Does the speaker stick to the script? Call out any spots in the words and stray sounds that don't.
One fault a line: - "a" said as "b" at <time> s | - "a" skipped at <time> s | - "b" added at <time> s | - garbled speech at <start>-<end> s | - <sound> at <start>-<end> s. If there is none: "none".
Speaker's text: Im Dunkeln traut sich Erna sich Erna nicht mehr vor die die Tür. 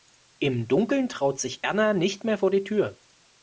- "sich Erna" skipped at 1.9 s
- "die" skipped at 2.6 s